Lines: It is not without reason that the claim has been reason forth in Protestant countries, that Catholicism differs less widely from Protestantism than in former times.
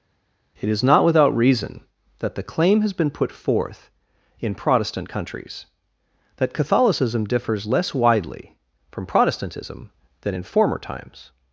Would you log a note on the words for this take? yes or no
yes